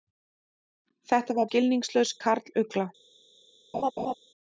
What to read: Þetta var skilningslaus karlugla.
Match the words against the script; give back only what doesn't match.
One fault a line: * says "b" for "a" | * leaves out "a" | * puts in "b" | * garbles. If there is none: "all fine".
all fine